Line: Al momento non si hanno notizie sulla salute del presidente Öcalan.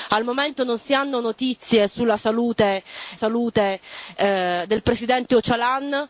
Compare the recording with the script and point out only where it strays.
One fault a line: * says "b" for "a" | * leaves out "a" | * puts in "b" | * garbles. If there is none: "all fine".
* puts in "salute"